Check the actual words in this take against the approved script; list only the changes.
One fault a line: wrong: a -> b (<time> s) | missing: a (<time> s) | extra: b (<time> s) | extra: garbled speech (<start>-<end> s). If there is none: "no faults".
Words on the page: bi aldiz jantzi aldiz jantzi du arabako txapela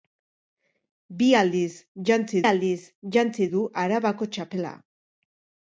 no faults